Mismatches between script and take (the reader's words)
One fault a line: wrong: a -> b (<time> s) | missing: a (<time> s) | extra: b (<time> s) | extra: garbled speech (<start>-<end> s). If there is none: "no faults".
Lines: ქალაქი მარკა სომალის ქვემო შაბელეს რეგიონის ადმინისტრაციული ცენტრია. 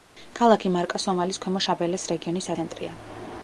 missing: ადმინისტრაციული (2.5 s)